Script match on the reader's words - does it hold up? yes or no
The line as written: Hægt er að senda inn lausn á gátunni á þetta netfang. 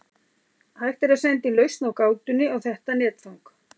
yes